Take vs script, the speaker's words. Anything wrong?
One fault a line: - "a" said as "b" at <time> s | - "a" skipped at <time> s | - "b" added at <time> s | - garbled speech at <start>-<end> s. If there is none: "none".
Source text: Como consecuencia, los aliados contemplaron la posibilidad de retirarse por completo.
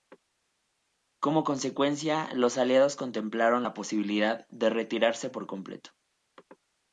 none